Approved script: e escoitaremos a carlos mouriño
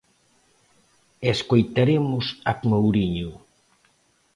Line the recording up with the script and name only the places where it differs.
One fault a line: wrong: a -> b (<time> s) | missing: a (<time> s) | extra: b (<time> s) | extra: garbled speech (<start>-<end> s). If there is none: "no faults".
missing: carlos (2.5 s)